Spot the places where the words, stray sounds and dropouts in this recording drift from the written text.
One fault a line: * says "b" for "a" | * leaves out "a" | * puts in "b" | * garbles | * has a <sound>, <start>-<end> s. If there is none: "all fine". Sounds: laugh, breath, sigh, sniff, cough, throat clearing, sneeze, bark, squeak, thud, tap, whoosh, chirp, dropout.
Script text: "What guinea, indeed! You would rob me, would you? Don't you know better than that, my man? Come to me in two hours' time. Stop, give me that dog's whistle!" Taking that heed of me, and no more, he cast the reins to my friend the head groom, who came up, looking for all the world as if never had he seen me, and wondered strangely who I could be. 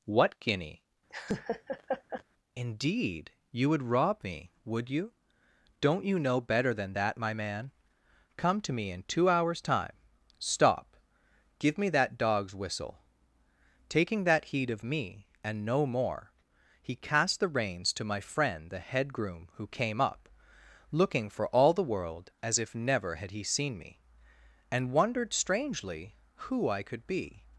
* has a laugh, 1.1-2.2 s